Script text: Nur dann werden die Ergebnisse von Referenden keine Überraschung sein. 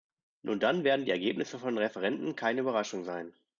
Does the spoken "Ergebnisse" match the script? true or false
true